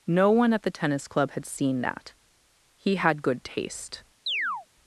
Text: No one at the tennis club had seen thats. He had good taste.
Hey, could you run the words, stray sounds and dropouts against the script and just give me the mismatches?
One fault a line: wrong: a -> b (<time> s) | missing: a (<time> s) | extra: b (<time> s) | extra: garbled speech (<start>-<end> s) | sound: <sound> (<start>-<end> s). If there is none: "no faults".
wrong: thats -> that (1.8 s)
sound: chirp (4.3-4.7 s)